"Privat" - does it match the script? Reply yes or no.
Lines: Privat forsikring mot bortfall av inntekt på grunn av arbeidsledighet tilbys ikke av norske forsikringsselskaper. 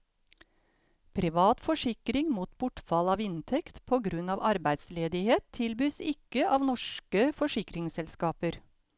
yes